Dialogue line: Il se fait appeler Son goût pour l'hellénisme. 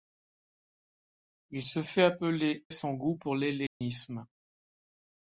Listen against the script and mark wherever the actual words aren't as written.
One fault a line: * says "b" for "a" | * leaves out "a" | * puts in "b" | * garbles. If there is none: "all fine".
all fine